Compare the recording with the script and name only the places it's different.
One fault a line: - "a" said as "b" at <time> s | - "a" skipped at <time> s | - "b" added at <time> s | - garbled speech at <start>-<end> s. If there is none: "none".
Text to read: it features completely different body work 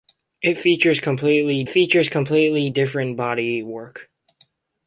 - "features completely" added at 1.7 s